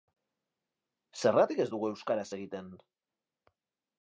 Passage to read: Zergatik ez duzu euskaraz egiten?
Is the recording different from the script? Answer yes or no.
yes